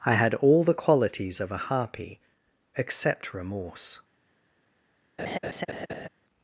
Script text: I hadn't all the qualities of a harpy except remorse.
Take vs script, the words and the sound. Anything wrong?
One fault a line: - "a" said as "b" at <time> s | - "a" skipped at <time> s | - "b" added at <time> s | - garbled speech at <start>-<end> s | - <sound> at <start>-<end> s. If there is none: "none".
- "hadn't" said as "had" at 0.1 s
- laugh at 5.2-6.1 s